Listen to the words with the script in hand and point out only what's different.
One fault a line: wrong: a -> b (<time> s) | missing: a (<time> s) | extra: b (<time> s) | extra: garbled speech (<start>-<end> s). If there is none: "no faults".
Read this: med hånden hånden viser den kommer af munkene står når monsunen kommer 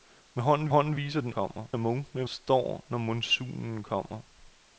no faults